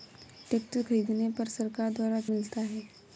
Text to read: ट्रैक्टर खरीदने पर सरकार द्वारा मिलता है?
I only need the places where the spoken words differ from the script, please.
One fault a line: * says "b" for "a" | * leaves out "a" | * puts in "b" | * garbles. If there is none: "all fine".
all fine